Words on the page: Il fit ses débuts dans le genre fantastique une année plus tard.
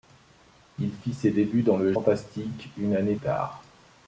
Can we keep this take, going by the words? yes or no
no